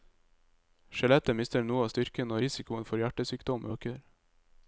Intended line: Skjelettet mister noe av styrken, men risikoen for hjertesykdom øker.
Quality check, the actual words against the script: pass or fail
fail